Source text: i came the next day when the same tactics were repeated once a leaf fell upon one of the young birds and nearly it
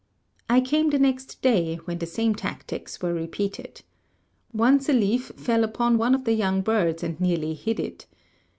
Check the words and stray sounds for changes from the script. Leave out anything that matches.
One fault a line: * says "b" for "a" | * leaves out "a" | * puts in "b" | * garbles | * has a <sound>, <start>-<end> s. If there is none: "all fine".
* puts in "hid"